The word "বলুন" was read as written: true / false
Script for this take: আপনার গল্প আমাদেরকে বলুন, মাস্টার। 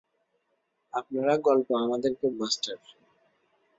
false